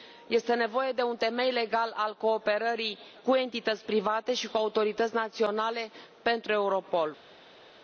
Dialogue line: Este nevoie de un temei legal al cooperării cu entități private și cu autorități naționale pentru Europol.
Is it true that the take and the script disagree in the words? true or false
false